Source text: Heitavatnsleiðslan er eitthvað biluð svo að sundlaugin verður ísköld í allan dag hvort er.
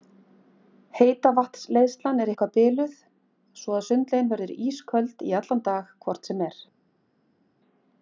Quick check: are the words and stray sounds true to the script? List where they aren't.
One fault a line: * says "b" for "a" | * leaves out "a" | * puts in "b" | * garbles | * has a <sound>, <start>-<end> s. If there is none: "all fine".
* puts in "sem"